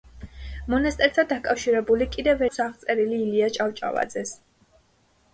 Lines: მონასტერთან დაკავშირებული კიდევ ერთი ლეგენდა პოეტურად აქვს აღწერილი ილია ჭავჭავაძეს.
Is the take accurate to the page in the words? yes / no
no